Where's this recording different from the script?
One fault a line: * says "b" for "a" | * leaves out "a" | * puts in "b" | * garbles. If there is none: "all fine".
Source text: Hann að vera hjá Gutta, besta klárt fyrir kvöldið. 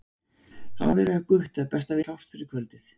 all fine